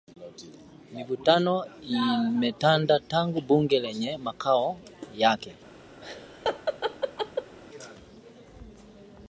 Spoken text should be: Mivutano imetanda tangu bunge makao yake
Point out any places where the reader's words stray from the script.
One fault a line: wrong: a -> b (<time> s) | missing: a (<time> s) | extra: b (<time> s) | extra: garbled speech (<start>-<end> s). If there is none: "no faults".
extra: lenye (3.8 s)